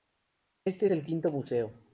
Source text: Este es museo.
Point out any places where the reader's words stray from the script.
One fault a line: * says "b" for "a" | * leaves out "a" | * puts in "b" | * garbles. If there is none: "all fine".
* puts in "el quinto"